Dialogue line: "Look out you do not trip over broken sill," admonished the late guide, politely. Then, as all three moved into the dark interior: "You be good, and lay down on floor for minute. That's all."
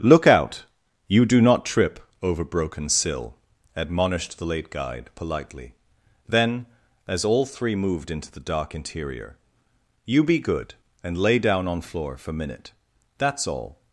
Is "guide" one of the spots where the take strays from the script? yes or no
no